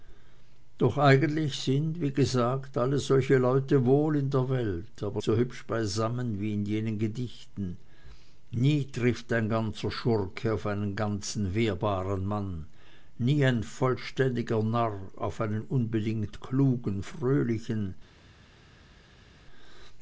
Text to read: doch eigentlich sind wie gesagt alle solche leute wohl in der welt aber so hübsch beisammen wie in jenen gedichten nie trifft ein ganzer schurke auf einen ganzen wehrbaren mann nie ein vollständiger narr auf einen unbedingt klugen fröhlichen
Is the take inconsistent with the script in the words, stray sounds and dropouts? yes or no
no